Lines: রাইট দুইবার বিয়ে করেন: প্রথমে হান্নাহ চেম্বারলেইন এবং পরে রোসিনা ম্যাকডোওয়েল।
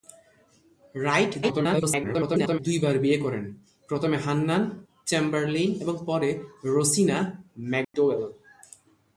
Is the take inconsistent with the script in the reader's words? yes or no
yes